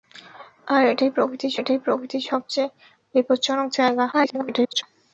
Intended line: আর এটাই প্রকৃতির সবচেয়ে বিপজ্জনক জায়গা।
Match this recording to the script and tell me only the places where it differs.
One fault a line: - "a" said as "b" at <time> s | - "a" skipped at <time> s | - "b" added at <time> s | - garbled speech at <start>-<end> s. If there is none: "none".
- "এটাই প্রকৃতির" added at 1.6 s
- garbled speech at 4.1-4.8 s